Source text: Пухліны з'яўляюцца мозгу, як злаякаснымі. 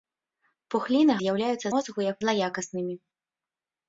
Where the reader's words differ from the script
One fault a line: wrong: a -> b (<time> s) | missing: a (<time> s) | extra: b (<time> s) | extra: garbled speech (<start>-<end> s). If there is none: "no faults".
no faults